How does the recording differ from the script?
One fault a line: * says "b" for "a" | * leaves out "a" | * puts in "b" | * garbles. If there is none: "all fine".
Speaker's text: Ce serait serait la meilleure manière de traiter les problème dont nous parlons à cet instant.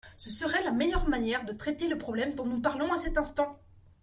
* leaves out "serait"
* says "le" for "les"